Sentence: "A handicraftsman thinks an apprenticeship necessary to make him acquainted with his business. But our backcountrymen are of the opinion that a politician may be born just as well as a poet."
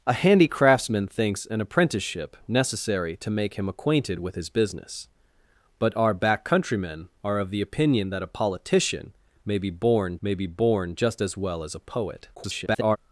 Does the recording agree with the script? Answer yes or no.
no